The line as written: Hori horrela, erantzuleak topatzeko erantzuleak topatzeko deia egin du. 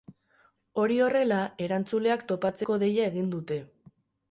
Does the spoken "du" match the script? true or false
false